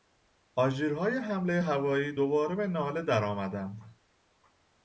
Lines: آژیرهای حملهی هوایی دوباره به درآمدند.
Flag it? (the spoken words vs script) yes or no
yes